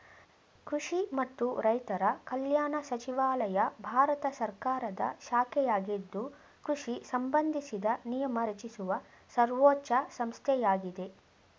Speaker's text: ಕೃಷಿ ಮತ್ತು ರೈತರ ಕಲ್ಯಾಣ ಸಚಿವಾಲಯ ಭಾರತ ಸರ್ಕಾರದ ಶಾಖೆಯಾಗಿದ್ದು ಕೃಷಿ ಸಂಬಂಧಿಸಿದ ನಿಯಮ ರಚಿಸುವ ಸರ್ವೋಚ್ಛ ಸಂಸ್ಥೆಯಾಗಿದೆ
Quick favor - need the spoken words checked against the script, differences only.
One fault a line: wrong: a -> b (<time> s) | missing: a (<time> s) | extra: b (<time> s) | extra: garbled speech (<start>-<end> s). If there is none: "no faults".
no faults